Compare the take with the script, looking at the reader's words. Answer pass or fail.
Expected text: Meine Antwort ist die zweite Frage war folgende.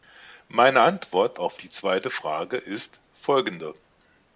fail